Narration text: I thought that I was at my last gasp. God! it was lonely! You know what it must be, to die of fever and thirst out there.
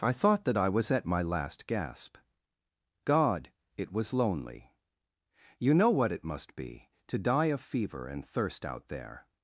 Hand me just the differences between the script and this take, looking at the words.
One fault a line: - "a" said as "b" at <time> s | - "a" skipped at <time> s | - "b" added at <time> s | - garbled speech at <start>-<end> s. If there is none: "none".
none